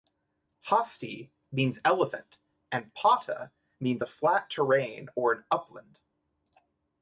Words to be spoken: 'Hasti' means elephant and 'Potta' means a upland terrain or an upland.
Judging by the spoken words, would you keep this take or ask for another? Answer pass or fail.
fail